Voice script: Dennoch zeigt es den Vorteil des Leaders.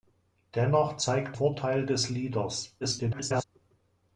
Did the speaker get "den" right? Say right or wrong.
wrong